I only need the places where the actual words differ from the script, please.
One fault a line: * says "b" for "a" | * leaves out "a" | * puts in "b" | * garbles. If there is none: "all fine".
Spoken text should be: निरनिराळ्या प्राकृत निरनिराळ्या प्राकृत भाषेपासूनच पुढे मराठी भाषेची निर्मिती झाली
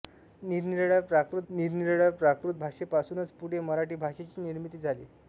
all fine